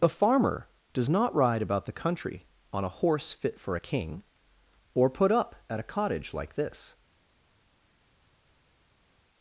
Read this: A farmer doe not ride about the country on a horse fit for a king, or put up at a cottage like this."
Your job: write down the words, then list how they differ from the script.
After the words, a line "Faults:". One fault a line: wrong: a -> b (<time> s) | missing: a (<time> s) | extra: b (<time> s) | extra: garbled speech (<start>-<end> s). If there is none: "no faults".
A farmer does not ride about the country on a horse fit for a king, or put up at a cottage like this."
Faults:
wrong: doe -> does (0.9 s)